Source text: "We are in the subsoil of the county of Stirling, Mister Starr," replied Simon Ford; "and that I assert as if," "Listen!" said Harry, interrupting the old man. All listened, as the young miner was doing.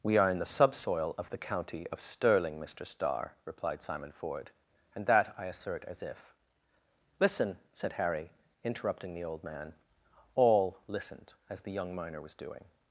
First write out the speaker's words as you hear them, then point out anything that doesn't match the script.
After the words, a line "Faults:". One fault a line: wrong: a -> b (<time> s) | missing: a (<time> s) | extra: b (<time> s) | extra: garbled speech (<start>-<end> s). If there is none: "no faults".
"We are in the subsoil of the county of Stirling, Mister Starr," replied Simon Ford; "and that I assert as if," "Listen!" said Harry, interrupting the old man. All listened, as the young miner was doing.
Faults:
no faults